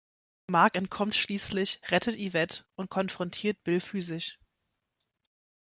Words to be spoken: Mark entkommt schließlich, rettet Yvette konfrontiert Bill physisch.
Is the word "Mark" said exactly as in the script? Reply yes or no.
yes